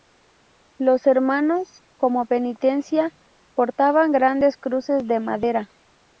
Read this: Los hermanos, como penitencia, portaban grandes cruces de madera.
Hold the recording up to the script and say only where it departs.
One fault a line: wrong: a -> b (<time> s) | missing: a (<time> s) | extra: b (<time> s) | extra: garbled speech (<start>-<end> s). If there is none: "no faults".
no faults